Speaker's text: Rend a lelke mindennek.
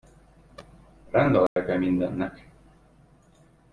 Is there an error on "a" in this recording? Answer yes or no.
no